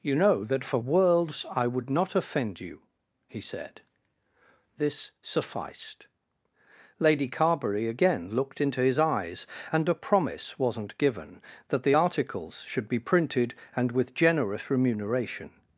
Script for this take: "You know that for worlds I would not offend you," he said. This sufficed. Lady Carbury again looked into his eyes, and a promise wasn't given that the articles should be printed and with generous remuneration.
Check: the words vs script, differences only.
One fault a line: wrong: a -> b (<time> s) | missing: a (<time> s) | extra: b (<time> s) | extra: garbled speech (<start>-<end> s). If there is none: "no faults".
no faults